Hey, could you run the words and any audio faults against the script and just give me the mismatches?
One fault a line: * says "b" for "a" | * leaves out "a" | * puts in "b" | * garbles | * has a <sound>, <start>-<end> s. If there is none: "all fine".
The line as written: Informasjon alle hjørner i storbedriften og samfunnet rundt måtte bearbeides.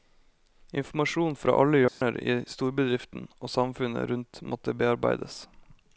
* puts in "fra"
* has a dropout, 1.9-2.0 s